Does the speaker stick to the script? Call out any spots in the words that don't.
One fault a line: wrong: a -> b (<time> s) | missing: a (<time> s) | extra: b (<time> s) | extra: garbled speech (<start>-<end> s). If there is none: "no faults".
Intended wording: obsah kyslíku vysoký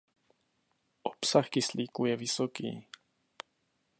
extra: je (2.0 s)